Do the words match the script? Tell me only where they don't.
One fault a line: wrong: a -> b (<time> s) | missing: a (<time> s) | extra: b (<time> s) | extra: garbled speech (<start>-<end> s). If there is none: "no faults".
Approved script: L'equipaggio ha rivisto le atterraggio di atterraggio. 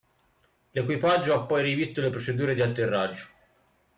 extra: poi (1.4 s)
wrong: atterraggio -> procedure (2.1 s)